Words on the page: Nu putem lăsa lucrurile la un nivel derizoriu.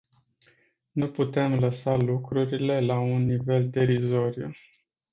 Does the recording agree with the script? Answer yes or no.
yes